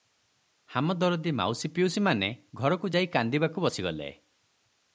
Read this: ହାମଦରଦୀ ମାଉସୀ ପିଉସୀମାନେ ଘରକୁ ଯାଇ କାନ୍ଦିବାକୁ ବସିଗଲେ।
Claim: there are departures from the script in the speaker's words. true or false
false